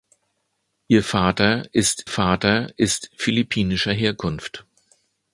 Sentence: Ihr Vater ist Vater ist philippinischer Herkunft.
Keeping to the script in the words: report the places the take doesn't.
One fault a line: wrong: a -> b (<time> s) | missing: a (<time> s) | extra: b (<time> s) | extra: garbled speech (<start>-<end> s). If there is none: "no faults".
no faults